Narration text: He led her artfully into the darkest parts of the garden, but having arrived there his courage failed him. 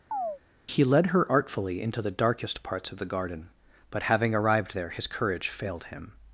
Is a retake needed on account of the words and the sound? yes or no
yes